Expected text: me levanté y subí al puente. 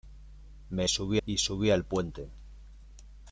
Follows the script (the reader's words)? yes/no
no